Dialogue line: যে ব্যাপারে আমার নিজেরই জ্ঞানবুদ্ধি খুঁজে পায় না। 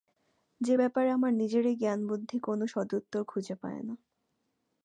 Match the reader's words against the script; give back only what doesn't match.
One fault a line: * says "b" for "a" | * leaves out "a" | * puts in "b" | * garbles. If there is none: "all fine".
* puts in "কোনো সদুত্তর"